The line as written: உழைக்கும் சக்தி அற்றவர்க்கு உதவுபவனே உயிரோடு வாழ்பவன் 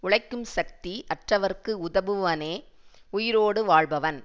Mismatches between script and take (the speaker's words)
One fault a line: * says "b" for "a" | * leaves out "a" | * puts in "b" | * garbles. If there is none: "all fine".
all fine